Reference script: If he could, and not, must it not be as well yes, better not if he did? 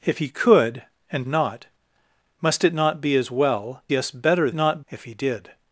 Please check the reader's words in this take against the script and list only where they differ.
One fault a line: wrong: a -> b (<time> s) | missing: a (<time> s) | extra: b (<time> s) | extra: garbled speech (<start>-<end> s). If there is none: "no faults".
no faults